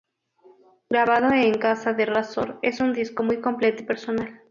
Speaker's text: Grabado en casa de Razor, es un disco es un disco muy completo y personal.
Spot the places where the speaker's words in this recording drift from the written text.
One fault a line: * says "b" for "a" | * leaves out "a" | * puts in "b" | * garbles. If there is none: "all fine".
* leaves out "es un disco"